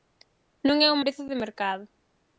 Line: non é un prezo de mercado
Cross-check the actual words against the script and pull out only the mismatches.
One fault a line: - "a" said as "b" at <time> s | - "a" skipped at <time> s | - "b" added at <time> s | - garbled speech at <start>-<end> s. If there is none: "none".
none